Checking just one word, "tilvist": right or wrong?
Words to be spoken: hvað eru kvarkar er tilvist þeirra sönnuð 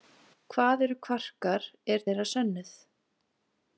wrong